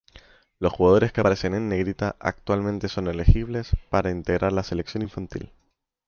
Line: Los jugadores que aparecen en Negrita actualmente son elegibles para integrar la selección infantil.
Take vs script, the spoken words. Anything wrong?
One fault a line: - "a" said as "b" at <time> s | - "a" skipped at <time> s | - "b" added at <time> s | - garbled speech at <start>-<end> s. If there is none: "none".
none